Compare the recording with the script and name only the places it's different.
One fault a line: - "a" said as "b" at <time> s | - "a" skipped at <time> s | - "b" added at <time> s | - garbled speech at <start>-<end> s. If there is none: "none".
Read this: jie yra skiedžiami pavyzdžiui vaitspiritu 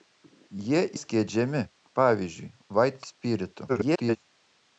- "yra" skipped at 0.8 s
- garbled speech at 3.7-4.2 s